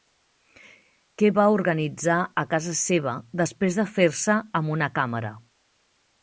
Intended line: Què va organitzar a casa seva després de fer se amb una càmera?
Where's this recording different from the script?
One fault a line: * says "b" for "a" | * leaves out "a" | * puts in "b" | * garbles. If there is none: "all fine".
all fine